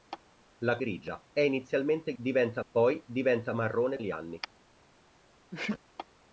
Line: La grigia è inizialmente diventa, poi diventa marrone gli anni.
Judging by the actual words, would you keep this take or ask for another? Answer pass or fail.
pass